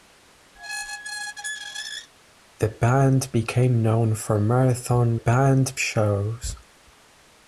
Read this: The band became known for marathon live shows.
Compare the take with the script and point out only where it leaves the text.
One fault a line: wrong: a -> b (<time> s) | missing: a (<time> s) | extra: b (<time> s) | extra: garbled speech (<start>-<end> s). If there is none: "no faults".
wrong: live -> band (5.1 s)